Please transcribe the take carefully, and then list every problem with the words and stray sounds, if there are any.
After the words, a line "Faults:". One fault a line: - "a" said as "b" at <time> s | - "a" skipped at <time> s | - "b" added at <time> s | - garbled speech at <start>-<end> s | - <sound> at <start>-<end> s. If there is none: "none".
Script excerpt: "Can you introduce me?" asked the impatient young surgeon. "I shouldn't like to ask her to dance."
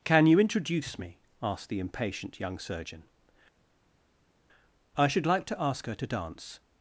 "Can you introduce me?" asked the impatient young surgeon. "I should like to ask her to dance."
Faults:
- "shouldn't" said as "should" at 5.1 s